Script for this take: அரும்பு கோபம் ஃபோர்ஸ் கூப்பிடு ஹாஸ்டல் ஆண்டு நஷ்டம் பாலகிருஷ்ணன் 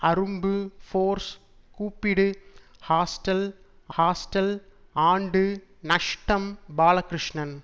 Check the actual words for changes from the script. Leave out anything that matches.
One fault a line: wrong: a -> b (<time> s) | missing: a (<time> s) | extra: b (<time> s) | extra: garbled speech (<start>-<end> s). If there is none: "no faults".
missing: கோபம் (0.5 s)
extra: ஹாஸ்டல் (4.0 s)